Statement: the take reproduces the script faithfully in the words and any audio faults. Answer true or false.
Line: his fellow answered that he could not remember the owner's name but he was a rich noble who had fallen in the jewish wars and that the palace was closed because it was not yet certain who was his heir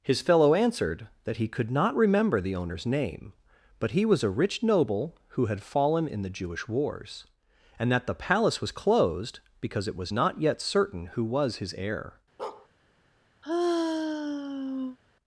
false